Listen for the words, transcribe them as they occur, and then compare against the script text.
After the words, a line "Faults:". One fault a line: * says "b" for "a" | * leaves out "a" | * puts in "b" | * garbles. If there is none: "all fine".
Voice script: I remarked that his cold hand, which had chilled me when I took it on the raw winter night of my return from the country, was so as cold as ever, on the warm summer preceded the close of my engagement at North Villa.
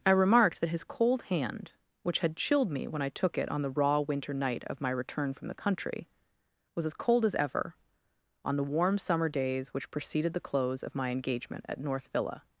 I remarked that his cold hand, which had chilled me when I took it on the raw winter night of my return from the country, was as cold as ever, on the warm summer days which preceded the close of my engagement at North Villa.
Faults:
* leaves out "so"
* puts in "days which"